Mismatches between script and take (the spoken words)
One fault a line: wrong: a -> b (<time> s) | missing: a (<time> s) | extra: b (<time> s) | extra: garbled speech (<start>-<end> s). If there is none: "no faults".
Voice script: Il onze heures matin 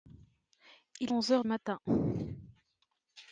no faults